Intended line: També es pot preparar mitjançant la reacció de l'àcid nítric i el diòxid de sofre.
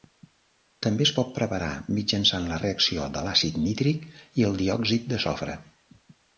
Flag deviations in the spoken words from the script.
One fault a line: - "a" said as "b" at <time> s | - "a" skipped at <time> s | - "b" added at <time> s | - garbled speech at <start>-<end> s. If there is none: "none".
none